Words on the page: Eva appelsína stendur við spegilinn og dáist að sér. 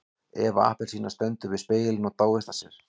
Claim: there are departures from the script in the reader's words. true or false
false